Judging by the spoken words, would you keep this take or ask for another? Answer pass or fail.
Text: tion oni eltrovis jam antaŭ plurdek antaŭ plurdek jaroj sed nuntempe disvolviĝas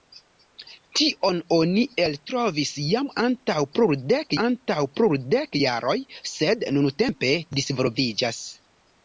pass